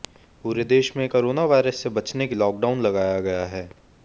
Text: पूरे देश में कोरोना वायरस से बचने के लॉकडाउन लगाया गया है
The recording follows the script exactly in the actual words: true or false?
true